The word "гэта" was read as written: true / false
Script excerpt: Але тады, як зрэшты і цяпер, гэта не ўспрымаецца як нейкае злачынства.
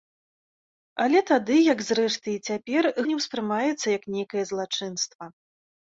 false